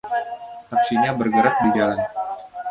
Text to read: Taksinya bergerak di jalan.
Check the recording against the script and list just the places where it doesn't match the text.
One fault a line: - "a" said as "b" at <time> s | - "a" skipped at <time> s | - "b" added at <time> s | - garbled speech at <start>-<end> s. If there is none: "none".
none